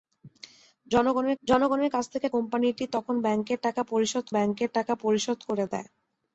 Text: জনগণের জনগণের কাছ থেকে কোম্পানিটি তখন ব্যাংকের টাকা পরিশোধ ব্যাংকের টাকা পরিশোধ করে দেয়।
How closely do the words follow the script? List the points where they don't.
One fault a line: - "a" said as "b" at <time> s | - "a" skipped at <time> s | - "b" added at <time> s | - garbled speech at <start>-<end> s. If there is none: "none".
none